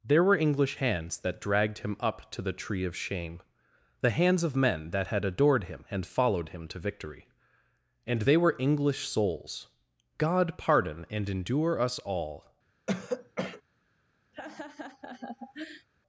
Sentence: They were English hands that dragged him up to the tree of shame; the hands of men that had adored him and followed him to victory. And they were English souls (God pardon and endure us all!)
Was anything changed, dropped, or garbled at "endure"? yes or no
no